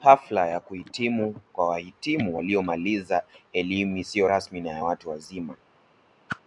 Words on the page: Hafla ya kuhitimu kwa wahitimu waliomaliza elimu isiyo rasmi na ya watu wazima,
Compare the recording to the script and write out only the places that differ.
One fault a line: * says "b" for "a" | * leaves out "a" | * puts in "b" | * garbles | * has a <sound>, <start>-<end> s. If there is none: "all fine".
* has a whoosh, 6.3-6.4 s